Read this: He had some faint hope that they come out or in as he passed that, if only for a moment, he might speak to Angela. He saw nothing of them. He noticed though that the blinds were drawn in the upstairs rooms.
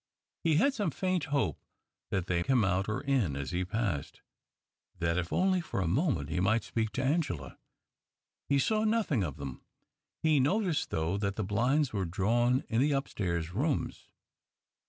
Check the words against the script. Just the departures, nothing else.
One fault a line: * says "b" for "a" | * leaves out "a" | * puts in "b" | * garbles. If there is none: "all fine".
all fine